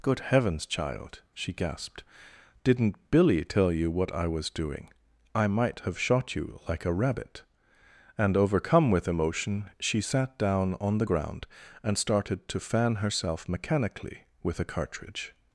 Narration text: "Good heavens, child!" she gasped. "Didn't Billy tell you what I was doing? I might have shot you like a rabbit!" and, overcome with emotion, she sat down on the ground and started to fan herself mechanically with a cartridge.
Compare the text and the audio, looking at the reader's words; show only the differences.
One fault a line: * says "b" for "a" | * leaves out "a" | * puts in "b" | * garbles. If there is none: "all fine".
all fine